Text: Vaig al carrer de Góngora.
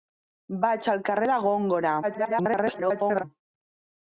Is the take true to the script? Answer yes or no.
no